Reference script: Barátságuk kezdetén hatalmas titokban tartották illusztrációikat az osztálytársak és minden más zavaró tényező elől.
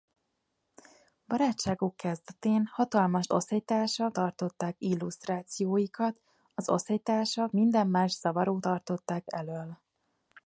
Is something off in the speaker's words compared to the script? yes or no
yes